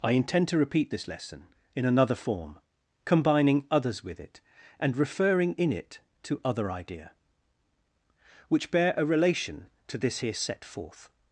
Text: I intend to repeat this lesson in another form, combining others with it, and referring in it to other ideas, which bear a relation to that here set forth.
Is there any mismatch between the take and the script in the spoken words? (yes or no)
yes